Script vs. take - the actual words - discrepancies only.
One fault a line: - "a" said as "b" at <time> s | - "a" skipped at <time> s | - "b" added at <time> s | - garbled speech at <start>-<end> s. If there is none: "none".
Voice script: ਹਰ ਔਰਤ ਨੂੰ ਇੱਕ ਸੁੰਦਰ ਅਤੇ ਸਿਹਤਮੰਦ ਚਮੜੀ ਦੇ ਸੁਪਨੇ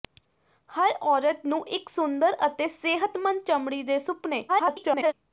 - garbled speech at 4.5-5.1 s